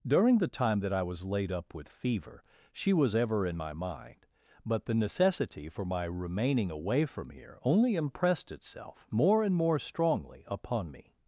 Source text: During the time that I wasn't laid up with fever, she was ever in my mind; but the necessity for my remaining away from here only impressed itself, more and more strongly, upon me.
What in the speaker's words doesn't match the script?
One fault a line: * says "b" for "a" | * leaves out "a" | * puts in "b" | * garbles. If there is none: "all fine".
* says "was" for "wasn't"